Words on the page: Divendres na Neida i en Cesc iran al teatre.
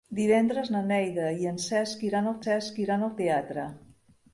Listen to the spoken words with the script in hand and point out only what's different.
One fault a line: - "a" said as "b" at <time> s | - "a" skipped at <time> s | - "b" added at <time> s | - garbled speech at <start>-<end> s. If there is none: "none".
- "Cesc iran al" added at 2.4 s